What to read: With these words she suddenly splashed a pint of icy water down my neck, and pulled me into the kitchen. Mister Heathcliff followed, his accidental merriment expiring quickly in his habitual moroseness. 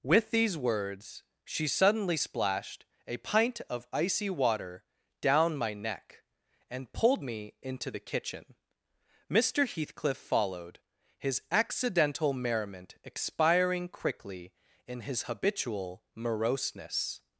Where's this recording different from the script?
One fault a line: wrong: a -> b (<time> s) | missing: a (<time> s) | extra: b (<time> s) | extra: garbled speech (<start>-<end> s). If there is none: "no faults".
no faults